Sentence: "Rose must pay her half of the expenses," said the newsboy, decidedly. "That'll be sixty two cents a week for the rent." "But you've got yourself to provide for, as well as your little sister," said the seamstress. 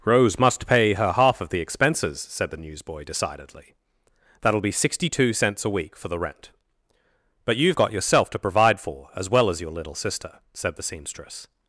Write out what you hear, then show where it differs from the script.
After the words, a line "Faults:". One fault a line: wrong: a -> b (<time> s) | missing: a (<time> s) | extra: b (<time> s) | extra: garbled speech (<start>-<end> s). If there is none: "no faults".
"Rose must pay her half of the expenses," said the newsboy, decidedly. "That'll be sixty two cents a week for the rent." "But you've got yourself to provide for, as well as your little sister," said the seamstress.
Faults:
no faults